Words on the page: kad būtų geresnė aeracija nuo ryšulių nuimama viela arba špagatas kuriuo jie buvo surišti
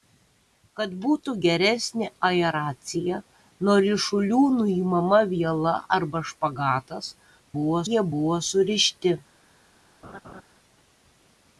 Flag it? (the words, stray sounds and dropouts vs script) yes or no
yes